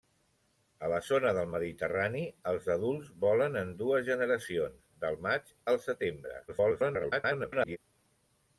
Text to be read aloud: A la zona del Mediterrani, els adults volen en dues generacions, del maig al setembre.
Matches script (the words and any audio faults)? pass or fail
fail